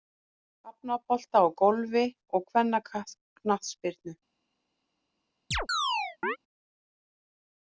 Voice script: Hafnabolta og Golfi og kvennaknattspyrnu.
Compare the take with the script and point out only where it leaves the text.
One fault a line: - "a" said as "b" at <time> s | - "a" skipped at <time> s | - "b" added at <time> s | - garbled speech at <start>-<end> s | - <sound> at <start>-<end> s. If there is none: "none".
- chirp at 5.5-6.4 s